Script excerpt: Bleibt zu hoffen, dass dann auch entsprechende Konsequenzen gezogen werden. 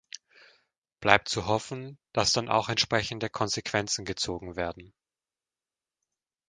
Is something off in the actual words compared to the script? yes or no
no